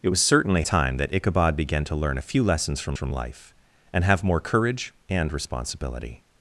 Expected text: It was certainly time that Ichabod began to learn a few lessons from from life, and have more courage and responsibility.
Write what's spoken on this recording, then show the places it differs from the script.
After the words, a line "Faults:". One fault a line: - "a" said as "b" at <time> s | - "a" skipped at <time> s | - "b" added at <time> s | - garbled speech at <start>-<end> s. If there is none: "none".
It was certainly time that Ichabod began to learn a few lessons from from life, and have more courage and responsibility.
Faults:
none